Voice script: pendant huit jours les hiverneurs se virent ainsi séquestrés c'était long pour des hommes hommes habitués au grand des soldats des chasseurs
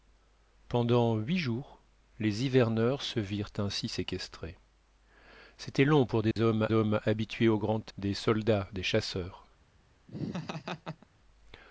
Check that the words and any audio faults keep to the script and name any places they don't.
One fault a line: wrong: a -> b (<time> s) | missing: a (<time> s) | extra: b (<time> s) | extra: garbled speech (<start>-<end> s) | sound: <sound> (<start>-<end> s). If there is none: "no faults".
sound: dropout (6.3-6.4 s)
sound: laugh (10.1-11.1 s)